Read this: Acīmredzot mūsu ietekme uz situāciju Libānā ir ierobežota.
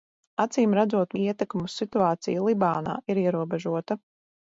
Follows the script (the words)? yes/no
no